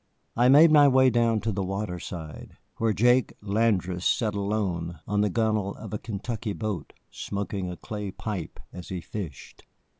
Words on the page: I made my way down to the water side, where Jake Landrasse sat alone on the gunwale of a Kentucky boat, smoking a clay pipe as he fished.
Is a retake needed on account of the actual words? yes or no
no